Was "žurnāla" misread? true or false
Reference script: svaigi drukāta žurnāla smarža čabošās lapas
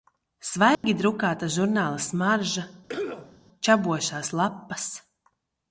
false